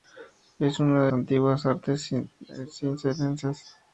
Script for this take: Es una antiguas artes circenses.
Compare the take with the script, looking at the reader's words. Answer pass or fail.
pass